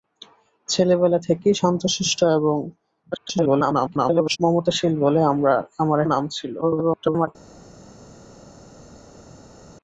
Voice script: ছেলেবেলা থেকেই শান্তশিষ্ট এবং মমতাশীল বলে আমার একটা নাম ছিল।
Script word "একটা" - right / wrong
wrong